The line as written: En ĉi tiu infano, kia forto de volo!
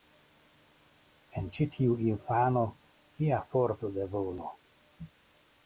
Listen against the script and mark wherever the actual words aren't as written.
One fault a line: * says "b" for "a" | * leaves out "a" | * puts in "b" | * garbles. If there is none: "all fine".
all fine